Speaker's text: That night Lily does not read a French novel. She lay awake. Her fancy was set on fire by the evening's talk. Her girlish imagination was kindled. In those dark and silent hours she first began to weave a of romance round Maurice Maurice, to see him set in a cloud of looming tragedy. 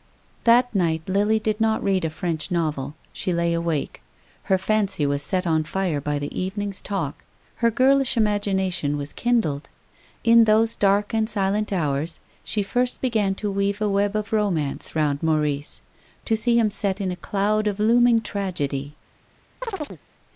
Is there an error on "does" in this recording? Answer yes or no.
yes